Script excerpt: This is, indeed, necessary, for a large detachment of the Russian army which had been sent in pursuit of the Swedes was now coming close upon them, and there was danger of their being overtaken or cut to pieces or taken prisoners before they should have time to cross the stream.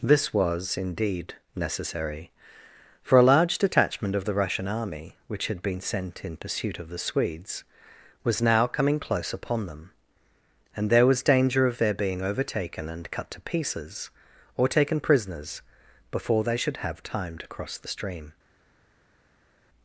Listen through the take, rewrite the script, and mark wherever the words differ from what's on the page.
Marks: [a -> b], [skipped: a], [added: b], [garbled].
This [is, -> was] indeed, necessary, for a large detachment of the Russian army which had been sent in pursuit of the Swedes was now coming close upon them, and there was danger of their being overtaken [or -> and] cut to pieces or taken prisoners before they should have time to cross the stream.